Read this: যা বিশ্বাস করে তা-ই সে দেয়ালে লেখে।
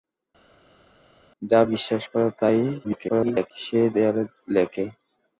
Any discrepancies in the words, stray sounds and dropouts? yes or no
yes